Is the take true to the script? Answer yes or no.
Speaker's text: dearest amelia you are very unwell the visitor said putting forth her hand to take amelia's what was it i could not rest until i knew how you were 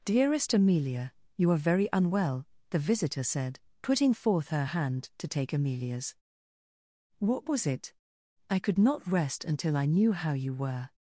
yes